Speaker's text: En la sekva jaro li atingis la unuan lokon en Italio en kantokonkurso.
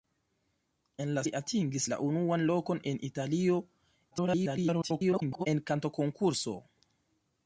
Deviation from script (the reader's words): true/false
true